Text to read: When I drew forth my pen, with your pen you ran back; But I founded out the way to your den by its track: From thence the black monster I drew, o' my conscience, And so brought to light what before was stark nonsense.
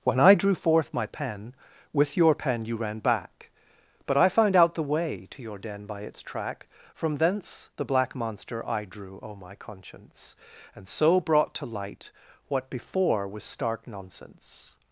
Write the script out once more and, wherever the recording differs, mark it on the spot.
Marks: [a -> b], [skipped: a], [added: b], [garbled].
When I drew forth my pen, with your pen you ran back; But I [founded -> found] out the way to your den by its track: From thence the black monster I drew, o' my conscience, And so brought to light what before was stark nonsense.